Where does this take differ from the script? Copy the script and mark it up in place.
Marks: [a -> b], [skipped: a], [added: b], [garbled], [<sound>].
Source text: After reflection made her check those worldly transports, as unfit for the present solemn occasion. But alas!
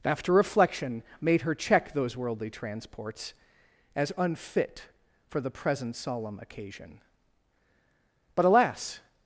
After reflection made her check those worldly transports, as unfit for the present solemn occasion. But alas!